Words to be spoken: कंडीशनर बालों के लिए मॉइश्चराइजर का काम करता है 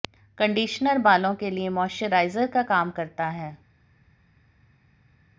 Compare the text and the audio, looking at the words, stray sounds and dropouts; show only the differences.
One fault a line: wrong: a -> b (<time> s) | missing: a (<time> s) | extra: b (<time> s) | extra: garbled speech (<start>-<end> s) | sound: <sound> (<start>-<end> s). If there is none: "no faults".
no faults